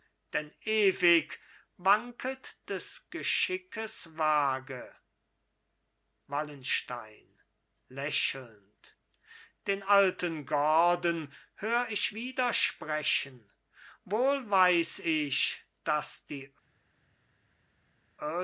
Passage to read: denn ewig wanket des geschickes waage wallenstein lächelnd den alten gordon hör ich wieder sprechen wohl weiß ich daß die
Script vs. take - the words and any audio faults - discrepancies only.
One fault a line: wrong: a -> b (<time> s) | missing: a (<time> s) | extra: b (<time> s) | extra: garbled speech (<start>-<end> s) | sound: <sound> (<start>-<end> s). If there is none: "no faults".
no faults